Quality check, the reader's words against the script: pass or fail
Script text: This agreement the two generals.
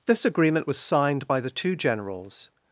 fail